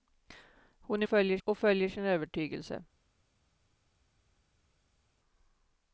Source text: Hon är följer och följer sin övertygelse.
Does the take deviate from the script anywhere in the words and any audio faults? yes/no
no